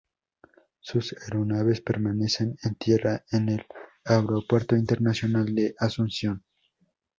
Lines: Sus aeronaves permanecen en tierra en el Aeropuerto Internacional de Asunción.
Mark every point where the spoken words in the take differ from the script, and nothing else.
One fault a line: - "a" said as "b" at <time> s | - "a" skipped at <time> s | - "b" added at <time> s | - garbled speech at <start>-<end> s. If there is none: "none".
none